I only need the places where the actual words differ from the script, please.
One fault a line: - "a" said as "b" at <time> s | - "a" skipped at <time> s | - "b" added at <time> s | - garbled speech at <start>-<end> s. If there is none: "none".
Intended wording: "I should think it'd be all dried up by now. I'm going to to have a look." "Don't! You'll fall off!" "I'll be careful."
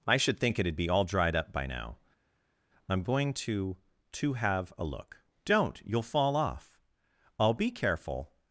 none